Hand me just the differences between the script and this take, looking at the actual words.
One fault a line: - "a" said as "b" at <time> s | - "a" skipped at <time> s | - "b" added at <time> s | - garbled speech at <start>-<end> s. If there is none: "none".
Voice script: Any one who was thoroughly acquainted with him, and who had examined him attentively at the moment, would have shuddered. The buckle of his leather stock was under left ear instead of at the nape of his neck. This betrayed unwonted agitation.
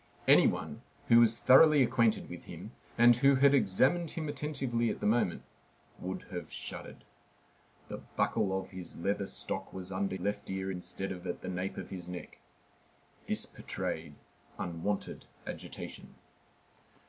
none